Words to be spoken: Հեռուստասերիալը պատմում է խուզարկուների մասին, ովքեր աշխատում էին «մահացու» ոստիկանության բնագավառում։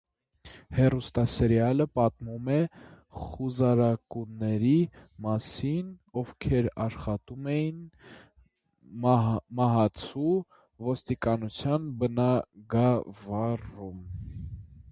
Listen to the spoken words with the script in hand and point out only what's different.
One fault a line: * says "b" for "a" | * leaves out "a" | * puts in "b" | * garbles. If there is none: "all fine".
all fine